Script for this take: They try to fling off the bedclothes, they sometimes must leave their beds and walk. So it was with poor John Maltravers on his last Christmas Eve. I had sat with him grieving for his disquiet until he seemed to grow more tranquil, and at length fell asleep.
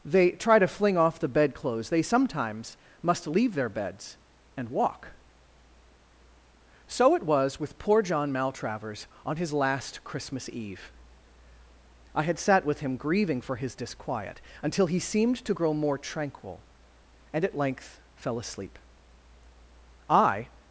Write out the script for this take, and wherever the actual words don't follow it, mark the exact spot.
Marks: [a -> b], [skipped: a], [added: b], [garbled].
They try to fling off the bedclothes, they sometimes must leave their beds and walk. So it was with poor John Maltravers on his last Christmas Eve. I had sat with him grieving for his disquiet until he seemed to grow more tranquil, and at length fell asleep. [added: I]